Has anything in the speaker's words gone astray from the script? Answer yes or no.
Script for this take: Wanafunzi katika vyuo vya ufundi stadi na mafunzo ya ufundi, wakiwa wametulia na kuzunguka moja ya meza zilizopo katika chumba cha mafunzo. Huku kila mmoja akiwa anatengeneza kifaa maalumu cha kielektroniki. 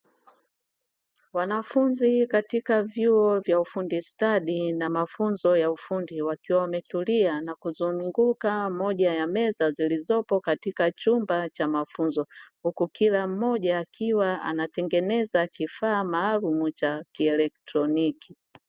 no